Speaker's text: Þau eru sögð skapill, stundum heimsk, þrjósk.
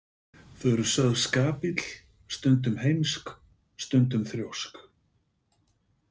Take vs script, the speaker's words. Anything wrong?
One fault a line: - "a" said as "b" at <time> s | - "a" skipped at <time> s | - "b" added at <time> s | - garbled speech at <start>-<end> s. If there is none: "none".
- "stundum" added at 3.9 s